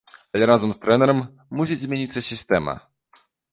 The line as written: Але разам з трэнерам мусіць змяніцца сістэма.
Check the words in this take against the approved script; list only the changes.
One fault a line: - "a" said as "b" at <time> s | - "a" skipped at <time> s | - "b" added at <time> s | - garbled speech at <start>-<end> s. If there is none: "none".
none